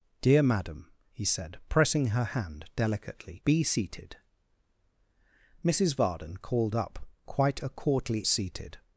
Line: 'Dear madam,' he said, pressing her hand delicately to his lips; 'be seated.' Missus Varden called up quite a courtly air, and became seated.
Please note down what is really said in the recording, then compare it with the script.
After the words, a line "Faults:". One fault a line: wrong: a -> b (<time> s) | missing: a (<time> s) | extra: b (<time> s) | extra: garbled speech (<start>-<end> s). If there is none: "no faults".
'Dear madam,' he said, pressing her hand delicately; 'be seated.' Missus Varden called up quite a courtly seated.
Faults:
missing: to his lips (3.4 s)
missing: air and became (8.3 s)